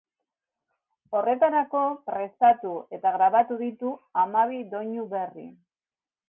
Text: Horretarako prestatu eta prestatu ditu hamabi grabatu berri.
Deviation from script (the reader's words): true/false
true